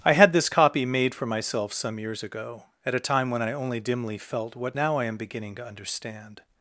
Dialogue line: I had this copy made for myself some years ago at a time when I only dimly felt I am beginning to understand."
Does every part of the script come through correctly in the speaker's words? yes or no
no